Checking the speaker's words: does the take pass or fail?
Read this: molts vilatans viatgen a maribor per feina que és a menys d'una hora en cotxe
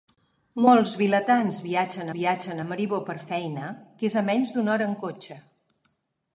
fail